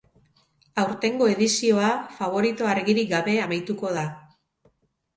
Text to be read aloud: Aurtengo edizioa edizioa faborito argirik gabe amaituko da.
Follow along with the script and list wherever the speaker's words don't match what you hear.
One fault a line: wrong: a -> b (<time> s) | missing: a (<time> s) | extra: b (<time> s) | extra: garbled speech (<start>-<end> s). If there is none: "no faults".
missing: edizioa (1.9 s)